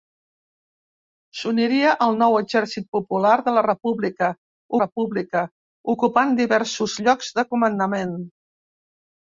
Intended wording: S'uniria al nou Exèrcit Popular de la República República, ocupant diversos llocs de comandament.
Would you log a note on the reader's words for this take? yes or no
no